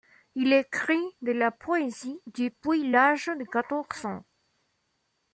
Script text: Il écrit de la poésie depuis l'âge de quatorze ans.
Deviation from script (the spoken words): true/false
false